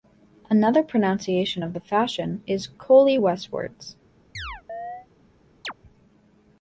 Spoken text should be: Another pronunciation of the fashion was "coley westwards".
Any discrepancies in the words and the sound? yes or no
yes